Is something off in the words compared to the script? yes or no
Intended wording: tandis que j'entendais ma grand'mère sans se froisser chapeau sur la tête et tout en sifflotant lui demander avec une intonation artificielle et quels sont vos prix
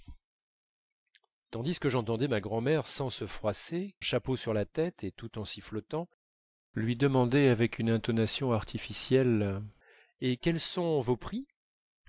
no